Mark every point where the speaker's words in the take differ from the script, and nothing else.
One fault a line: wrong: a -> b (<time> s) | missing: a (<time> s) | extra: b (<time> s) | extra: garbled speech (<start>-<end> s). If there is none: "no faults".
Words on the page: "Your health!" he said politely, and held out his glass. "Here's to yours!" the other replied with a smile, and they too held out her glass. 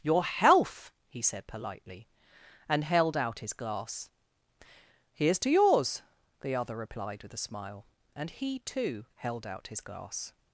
wrong: they -> he (8.3 s)
wrong: her -> his (9.7 s)